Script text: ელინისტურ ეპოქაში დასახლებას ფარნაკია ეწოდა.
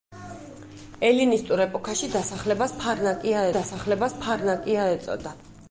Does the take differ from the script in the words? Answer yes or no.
yes